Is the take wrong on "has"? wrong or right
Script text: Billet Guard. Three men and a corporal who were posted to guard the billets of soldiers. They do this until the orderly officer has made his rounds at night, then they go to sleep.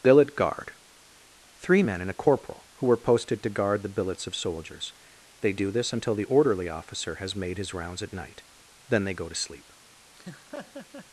right